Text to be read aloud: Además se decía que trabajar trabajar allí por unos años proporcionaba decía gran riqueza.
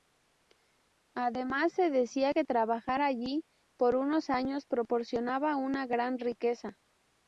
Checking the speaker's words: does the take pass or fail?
fail